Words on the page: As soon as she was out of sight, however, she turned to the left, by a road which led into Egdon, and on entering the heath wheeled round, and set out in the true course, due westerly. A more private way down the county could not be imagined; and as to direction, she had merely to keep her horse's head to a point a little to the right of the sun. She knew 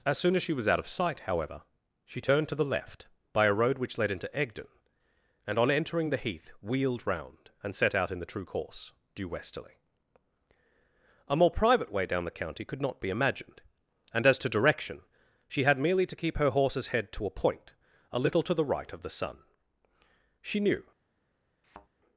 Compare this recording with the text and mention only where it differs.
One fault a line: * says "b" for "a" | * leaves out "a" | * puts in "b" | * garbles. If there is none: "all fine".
all fine